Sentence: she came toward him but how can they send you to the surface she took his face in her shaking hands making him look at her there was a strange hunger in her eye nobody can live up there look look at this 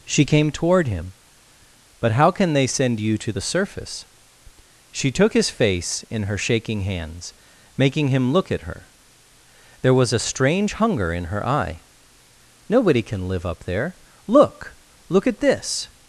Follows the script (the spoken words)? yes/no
yes